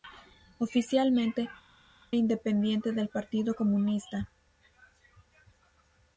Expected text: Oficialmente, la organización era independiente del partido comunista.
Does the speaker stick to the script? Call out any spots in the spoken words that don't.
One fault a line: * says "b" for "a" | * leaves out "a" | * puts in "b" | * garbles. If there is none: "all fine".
* leaves out "la organización era"